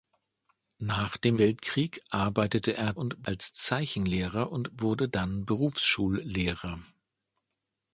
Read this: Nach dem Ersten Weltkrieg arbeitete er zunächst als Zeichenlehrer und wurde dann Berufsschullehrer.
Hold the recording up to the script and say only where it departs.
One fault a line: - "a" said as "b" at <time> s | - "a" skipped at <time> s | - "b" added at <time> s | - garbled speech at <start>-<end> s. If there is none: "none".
- "Ersten" skipped at 1.4 s
- "zunächst" said as "und" at 3.0 s